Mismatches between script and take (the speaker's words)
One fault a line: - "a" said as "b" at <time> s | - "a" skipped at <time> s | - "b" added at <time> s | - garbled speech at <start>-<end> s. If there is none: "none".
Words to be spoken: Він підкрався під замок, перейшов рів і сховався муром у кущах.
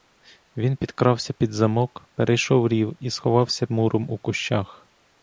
none